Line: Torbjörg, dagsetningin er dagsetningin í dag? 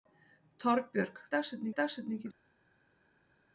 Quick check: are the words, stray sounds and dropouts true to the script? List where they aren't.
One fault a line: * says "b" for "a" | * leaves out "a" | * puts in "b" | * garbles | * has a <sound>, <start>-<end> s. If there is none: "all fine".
all fine